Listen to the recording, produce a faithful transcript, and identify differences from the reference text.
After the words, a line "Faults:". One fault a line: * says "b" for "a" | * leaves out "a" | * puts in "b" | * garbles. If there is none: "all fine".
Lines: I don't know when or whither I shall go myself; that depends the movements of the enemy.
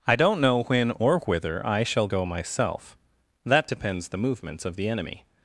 I don't know when or whither I shall go myself; that depends the movements of the enemy.
Faults:
all fine